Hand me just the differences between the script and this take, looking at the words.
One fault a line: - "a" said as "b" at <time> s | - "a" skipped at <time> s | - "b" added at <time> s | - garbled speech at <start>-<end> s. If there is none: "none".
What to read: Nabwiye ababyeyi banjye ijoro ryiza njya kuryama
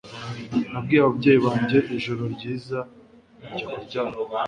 none